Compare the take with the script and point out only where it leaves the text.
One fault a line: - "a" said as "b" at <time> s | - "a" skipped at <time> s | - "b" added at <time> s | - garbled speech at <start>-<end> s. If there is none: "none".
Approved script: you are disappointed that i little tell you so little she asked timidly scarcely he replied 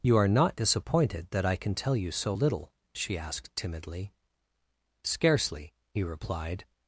- "not" added at 0.3 s
- "little" said as "can" at 1.6 s